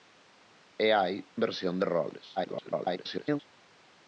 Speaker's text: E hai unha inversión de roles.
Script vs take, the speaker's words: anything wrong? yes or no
yes